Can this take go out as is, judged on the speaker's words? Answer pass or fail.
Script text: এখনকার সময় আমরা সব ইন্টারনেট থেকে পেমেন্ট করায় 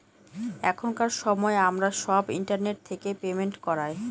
pass